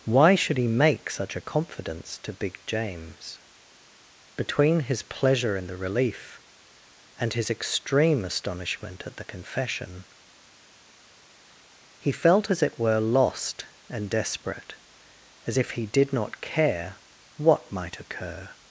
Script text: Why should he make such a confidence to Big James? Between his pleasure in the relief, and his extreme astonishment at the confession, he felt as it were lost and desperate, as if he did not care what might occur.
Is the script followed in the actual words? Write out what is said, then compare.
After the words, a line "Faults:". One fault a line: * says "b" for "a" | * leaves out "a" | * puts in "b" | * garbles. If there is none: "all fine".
Why should he make such a confidence to Big James? Between his pleasure in the relief, and his extreme astonishment at the confession, he felt as it were lost and desperate, as if he did not care what might occur.
Faults:
all fine